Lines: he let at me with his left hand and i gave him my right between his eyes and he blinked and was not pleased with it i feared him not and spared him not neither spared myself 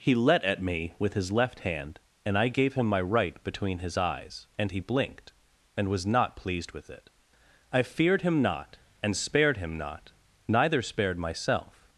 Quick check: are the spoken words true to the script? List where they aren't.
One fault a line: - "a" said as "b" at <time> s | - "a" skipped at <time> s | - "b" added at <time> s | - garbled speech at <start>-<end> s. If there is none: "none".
none